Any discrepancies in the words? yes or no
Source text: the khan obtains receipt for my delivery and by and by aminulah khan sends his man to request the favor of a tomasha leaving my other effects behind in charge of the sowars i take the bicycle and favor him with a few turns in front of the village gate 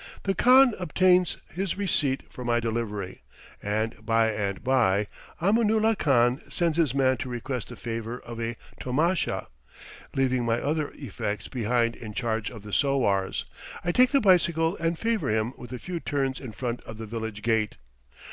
yes